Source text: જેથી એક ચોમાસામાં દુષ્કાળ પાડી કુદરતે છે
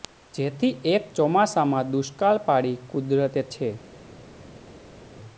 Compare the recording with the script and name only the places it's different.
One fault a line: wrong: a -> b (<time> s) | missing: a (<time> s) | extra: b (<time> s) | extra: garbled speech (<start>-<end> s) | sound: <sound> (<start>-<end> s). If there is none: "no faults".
no faults